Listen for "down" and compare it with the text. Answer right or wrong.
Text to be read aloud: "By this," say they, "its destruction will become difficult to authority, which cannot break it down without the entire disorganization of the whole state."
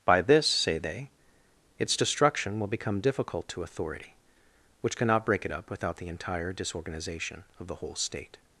wrong